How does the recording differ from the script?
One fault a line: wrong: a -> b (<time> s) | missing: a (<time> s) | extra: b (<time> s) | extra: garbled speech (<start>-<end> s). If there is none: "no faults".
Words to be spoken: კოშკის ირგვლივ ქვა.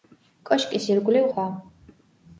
no faults